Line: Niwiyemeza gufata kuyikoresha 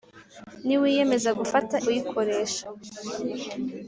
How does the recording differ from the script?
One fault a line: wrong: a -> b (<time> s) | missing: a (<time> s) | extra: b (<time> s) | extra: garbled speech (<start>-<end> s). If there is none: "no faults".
no faults